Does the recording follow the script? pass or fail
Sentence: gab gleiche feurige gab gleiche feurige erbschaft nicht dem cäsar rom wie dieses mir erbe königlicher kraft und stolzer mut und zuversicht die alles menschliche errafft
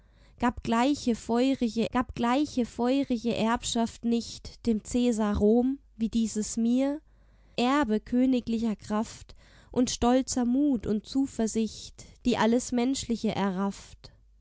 pass